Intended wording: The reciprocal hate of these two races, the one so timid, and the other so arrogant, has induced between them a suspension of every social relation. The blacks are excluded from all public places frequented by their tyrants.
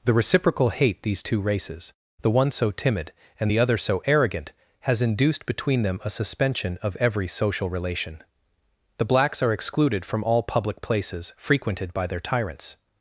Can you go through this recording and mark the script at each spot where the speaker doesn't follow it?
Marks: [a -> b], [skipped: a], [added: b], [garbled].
The reciprocal hate [skipped: of] these two races, the one so timid, and the other so arrogant, has induced between them a suspension of every social relation. The blacks are excluded from all public places frequented by their tyrants.